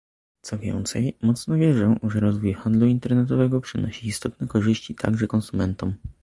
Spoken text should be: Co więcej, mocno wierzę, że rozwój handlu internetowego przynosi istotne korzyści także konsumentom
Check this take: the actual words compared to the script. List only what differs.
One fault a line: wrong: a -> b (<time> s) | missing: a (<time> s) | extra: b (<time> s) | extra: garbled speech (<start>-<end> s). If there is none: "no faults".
no faults